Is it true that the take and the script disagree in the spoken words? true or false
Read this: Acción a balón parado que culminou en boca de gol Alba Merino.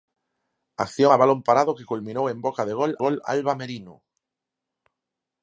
true